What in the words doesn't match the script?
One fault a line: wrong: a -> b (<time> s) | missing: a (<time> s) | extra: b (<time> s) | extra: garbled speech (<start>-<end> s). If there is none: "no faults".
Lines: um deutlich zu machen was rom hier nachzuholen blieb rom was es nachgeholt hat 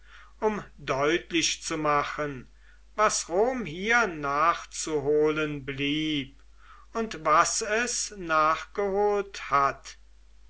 wrong: rom -> und (6.9 s)